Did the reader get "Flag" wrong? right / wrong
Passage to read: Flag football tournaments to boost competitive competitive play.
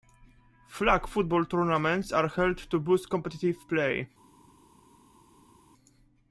right